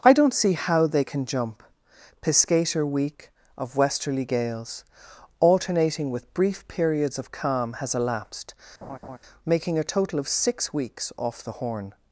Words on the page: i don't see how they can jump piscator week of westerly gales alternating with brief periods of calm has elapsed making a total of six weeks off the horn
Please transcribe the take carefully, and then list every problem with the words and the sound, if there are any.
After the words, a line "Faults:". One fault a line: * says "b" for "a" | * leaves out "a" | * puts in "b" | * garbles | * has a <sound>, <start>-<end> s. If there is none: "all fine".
i don't see how they can jump piscator week of westerly gales alternating with brief periods of calm has elapsed making a total of six weeks off the horn
Faults:
* has a laugh, 8.8-9.2 s